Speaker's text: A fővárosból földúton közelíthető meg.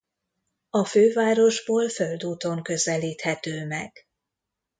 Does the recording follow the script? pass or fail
pass